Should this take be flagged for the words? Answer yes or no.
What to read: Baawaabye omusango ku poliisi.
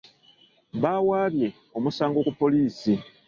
no